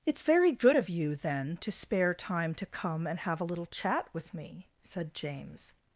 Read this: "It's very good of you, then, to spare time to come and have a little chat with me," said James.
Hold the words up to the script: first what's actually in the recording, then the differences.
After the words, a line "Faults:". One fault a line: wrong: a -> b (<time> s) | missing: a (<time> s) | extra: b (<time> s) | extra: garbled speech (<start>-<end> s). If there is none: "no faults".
"It's very good of you, then, to spare time to come and have a little chat with me," said James.
Faults:
no faults